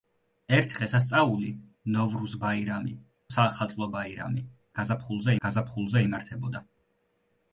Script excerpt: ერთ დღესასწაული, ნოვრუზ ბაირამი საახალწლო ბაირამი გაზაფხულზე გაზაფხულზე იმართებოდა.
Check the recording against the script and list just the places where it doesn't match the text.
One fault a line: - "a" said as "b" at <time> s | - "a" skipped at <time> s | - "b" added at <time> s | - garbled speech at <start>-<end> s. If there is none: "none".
none